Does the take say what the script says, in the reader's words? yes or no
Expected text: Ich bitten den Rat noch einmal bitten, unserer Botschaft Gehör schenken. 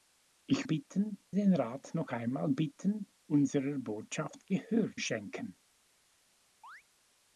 yes